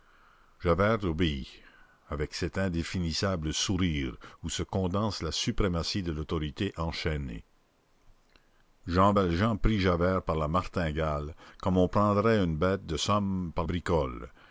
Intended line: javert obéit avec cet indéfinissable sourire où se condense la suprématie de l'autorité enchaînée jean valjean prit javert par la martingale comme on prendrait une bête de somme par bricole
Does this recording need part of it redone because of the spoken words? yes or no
no